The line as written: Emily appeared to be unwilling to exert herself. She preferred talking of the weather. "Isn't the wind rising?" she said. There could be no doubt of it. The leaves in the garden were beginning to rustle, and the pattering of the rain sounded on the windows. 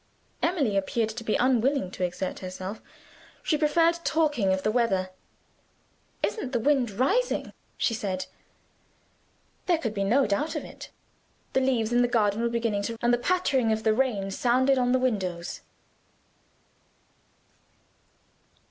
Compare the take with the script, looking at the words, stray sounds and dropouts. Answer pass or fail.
fail